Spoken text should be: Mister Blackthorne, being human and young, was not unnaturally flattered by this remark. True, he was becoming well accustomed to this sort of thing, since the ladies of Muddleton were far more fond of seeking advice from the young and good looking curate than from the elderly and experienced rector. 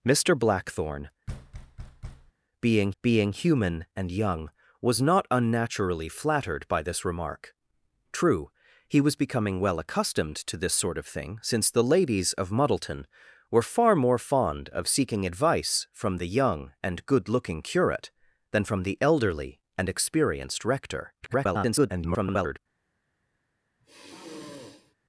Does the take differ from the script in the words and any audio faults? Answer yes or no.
yes